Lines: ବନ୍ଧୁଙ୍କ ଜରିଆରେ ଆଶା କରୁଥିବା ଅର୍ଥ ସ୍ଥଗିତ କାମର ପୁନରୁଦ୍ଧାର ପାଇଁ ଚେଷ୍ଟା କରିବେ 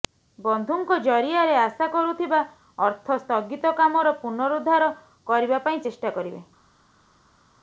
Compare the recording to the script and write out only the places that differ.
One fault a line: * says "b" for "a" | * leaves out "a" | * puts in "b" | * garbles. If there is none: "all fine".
* puts in "କରିବା"